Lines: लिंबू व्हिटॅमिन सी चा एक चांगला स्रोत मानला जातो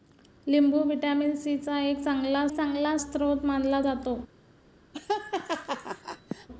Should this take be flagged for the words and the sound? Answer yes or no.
yes